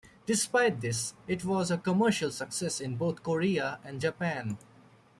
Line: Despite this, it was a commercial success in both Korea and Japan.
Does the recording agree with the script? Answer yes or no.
yes